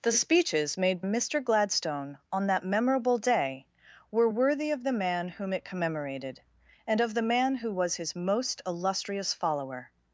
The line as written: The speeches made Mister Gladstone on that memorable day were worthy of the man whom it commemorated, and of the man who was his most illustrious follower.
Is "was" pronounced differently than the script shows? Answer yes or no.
no